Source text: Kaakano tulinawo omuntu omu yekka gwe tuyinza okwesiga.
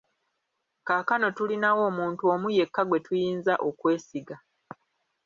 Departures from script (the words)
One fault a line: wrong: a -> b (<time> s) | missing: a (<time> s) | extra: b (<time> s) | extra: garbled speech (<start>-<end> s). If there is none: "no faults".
no faults